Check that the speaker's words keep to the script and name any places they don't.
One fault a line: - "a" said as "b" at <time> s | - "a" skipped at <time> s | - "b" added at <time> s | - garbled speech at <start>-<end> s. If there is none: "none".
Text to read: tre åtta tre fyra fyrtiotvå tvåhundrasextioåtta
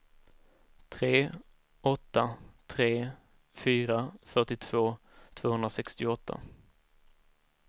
none